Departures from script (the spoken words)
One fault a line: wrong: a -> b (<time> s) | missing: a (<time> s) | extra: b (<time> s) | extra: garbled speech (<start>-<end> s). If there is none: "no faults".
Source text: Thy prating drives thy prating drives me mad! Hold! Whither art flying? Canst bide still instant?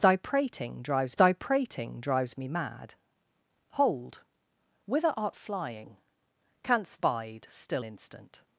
no faults